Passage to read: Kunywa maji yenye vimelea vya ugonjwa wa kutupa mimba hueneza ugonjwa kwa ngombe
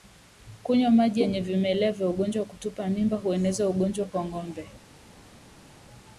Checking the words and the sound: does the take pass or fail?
pass